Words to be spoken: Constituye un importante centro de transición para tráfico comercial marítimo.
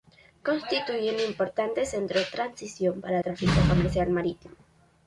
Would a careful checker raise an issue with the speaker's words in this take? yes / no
no